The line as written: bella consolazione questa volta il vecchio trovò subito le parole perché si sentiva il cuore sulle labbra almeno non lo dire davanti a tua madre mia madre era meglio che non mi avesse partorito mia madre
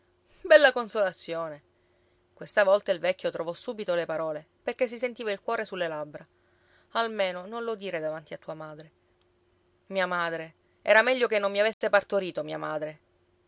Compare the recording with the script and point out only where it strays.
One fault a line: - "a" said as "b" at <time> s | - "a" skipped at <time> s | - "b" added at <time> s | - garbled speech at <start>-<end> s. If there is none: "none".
none